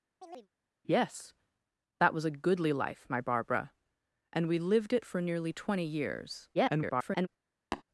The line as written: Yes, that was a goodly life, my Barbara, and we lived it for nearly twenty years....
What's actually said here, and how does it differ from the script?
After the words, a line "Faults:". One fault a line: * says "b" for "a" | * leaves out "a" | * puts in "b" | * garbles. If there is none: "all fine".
Yes, that was a goodly life, my Barbara, and we lived it for nearly twenty years.... [garbled]
Faults:
* garbles